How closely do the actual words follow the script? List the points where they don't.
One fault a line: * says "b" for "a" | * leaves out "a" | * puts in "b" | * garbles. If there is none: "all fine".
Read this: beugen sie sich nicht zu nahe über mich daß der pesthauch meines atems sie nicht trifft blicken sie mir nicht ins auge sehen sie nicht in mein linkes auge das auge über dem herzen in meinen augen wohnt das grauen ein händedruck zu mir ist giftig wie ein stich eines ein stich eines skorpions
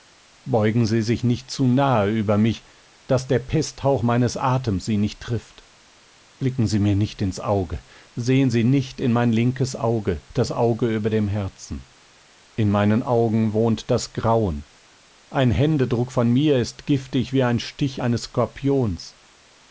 * says "von" for "zu"
* leaves out "ein stich eines"